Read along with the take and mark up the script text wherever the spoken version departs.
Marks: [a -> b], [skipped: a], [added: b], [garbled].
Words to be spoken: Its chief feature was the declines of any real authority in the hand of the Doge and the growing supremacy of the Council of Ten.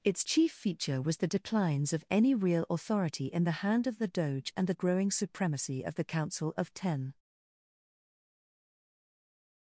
Its chief feature was the declines of any real authority in the hand of the Doge and the growing supremacy of the Council of Ten.